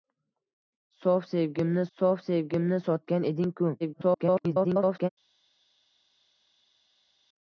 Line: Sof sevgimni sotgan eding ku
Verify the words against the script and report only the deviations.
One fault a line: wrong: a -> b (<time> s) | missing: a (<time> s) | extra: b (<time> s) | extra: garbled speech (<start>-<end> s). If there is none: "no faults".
extra: sof sevgimni (2.0 s)
extra: garbled speech (3.8-5.1 s)